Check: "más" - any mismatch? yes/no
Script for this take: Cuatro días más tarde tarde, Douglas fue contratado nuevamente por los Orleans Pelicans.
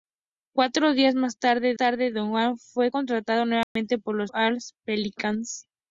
no